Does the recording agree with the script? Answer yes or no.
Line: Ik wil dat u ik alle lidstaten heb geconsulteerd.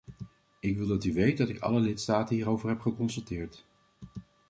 no